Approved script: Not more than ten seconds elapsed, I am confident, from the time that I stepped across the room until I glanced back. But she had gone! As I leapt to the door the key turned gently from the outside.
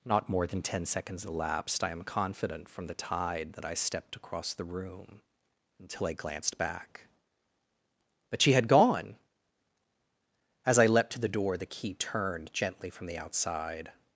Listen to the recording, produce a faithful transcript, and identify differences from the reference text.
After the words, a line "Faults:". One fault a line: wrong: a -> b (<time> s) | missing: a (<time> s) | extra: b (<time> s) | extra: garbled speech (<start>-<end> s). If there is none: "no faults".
Not more than ten seconds elapsed, I am confident, from the tide that I stepped across the room until I glanced back. But she had gone! As I leapt to the door the key turned gently from the outside.
Faults:
wrong: time -> tide (2.9 s)